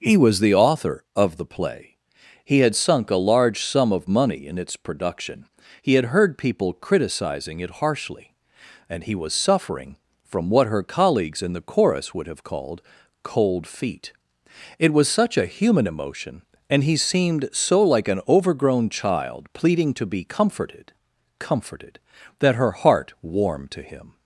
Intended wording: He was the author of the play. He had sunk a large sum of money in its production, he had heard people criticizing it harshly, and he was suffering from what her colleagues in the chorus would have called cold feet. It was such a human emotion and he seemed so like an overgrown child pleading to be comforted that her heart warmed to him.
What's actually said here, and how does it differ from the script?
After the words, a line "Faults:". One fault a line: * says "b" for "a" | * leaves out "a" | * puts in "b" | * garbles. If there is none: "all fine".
He was the author of the play. He had sunk a large sum of money in its production, he had heard people criticizing it harshly, and he was suffering from what her colleagues in the chorus would have called cold feet. It was such a human emotion and he seemed so like an overgrown child pleading to be comforted comforted that her heart warmed to him.
Faults:
* puts in "comforted"